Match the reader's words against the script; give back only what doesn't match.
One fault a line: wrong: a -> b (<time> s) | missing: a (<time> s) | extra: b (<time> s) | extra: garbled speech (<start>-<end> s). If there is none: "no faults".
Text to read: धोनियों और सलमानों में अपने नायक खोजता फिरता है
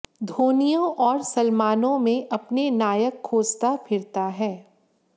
no faults